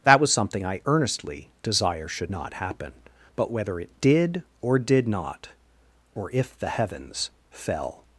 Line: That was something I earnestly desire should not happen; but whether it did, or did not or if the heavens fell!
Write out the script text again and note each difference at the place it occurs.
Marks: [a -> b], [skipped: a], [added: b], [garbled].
That was something I earnestly desire should not happen; but whether it did, or did not or if the heavens fell!